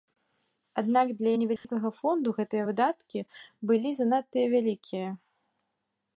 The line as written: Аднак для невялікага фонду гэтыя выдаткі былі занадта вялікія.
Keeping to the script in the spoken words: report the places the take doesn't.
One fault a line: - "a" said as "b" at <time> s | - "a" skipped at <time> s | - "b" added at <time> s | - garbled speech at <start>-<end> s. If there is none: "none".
none